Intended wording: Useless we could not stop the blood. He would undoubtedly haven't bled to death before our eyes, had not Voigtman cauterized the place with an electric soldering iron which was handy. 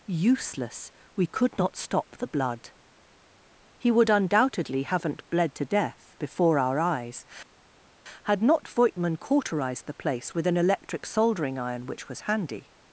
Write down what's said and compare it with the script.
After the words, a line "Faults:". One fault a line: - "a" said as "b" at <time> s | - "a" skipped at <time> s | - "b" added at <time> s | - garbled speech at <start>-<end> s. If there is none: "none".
Useless we could not stop the blood. He would undoubtedly haven't bled to death before our eyes, had not Voigtman cauterized the place with an electric soldering iron which was handy.
Faults:
none